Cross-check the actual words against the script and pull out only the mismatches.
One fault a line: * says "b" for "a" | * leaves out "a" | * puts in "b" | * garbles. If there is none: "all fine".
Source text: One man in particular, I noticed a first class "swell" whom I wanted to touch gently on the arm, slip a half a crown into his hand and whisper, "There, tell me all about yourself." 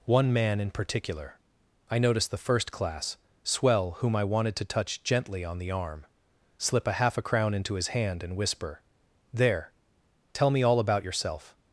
* says "the" for "a"